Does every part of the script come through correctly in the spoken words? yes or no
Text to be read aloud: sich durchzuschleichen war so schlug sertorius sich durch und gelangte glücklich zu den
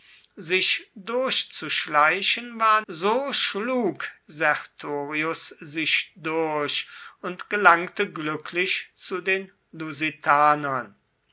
yes